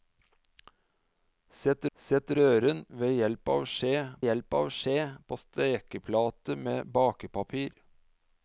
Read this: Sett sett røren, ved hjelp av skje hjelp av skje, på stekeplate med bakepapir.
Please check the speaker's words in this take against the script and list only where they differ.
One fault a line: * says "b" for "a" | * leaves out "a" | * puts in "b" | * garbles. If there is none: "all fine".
all fine